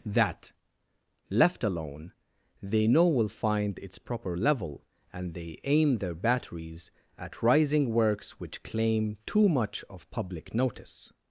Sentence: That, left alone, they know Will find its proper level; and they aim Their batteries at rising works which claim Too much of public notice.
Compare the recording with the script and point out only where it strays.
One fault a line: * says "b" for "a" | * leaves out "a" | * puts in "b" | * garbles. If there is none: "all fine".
all fine